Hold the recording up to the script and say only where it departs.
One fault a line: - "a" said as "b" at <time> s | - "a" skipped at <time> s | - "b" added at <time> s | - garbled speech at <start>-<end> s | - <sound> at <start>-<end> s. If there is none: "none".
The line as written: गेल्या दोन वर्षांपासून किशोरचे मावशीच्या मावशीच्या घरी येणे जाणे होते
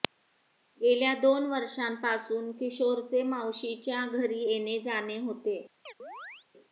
- "मावशीच्या" skipped at 4.0 s
- chirp at 5.9-6.5 s